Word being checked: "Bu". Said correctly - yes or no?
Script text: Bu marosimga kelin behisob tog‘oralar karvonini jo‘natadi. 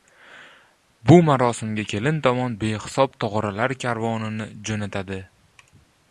yes